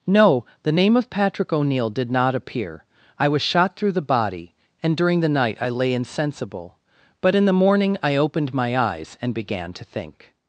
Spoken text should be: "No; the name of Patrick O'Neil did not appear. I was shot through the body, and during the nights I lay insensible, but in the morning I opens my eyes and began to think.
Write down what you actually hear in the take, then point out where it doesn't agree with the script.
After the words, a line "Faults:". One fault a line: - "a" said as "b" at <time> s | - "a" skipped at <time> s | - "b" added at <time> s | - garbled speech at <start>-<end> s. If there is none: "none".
"No; the name of Patrick O'Neil did not appear. I was shot through the body, and during the night I lay insensible, but in the morning I opened my eyes and began to think.
Faults:
- "nights" said as "night" at 5.3 s
- "opens" said as "opened" at 8.2 s